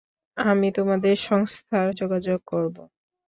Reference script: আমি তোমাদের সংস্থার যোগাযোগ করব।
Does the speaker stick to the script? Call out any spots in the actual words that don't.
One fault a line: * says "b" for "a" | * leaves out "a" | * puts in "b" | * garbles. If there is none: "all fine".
all fine